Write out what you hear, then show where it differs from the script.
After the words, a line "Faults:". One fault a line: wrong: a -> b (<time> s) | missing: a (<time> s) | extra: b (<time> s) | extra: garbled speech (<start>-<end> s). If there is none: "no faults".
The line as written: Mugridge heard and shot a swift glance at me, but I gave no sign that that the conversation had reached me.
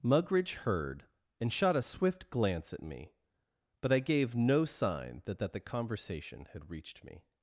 Mugridge heard and shot a swift glance at me, but I gave no sign that that the conversation had reached me.
Faults:
no faults